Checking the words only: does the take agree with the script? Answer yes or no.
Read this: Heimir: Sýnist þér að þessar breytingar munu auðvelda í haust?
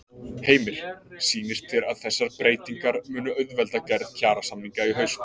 no